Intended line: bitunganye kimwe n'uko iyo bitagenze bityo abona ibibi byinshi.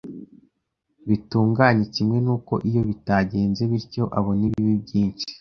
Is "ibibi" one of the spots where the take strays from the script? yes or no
no